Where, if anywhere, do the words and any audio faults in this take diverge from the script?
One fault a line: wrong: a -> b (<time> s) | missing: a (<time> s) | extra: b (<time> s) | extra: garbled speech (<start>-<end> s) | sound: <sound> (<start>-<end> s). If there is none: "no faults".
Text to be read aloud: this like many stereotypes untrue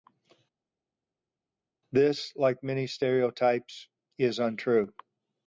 extra: is (4.2 s)